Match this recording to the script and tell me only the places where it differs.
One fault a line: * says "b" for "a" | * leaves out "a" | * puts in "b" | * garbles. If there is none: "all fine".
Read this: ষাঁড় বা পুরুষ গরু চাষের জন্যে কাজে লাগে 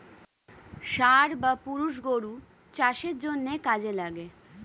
all fine